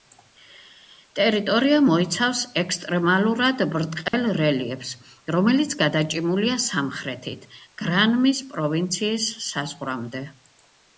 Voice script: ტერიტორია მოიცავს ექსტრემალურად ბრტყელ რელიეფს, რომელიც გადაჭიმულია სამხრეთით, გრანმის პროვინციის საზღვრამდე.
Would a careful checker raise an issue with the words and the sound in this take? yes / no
yes